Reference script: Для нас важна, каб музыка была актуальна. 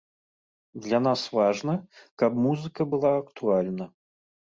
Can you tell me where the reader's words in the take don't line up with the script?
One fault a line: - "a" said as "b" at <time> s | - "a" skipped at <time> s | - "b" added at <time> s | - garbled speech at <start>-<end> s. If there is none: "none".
none